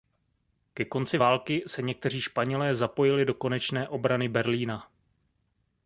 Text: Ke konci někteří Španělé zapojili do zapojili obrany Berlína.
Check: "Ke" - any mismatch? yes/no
no